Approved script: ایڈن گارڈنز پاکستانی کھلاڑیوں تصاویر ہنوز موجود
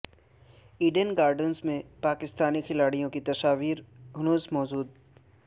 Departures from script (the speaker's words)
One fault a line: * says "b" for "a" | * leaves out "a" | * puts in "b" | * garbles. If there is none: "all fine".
* puts in "میں"
* puts in "کی"